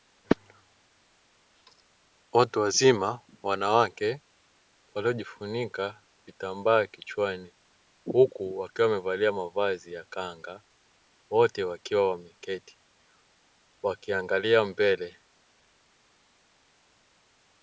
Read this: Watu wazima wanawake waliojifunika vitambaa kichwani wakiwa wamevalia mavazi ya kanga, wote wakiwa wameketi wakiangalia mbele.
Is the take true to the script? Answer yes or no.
no